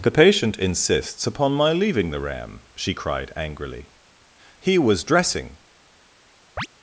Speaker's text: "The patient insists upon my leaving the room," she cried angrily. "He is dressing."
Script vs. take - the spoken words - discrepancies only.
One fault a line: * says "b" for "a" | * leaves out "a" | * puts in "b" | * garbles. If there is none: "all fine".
* says "ram" for "room"
* says "was" for "is"